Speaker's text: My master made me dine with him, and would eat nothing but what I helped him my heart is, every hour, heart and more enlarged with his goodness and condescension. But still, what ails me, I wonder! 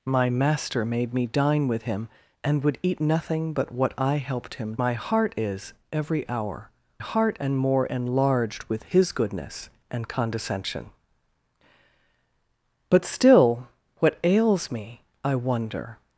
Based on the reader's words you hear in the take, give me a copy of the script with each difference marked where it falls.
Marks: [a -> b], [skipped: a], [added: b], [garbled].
My master made me dine with him, and would eat nothing but what I helped him my heart is, every hour, heart and more enlarged with his goodness and condescension. But still, what ails me, I wonder!